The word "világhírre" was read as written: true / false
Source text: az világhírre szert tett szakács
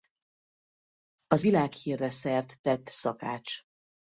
true